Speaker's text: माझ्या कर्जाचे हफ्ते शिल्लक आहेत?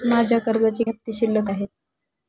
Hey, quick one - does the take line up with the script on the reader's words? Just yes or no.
yes